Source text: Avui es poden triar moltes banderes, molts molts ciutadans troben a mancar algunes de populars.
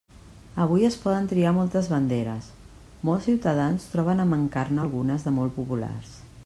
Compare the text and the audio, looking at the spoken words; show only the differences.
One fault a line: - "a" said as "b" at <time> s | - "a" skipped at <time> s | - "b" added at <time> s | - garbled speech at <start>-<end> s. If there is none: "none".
- "molts" skipped at 3.3 s
- "ne" added at 4.7 s
- "molt" added at 5.4 s